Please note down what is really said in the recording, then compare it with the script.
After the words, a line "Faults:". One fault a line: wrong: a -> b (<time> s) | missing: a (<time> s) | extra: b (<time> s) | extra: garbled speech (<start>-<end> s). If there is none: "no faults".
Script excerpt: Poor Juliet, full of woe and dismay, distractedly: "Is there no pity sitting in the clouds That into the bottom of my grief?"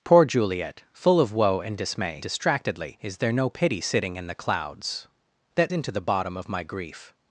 Poor Juliet, full of woe and dismay, distractedly: "Is there no pity sitting in the clouds That into the bottom of my grief?"
Faults:
no faults